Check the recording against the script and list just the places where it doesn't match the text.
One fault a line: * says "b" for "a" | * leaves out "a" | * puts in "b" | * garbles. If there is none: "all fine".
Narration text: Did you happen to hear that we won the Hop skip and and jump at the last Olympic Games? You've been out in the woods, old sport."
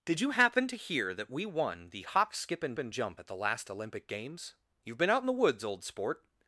all fine